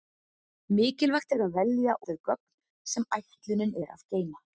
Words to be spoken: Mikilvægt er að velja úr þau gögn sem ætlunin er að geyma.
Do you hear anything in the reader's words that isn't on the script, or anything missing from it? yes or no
yes